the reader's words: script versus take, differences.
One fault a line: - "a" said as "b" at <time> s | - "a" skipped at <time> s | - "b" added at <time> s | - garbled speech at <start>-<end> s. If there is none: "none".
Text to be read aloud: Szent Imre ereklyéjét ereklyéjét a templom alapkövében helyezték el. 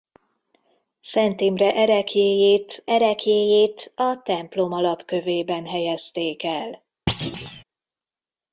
none